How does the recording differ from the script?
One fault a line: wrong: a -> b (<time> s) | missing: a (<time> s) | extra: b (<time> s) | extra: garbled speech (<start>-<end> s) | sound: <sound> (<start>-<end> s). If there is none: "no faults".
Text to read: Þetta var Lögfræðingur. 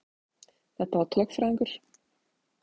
no faults